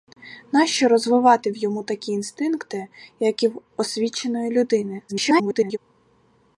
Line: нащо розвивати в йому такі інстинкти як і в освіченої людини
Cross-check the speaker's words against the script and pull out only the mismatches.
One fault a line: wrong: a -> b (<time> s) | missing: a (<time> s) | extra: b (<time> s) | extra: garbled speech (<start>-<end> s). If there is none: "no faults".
extra: garbled speech (5.1-5.8 s)